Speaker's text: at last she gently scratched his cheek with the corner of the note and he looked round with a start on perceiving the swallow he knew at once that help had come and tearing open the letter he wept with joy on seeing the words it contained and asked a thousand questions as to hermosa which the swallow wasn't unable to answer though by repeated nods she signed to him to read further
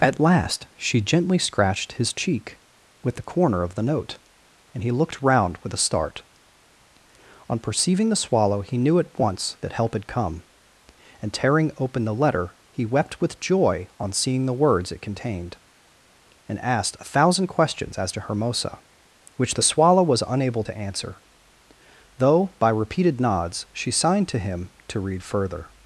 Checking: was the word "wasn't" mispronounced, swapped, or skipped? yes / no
yes